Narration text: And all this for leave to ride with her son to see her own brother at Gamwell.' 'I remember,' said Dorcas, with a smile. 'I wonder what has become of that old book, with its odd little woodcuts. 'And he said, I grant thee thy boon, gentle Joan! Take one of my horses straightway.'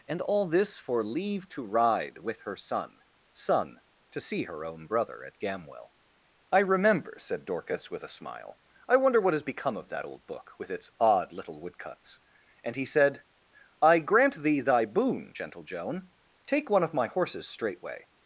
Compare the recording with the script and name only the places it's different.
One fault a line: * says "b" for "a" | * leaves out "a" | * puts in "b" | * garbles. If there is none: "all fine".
* puts in "son"